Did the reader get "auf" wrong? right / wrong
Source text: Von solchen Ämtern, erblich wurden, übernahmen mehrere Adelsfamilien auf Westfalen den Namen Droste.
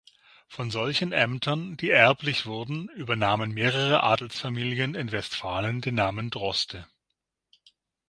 wrong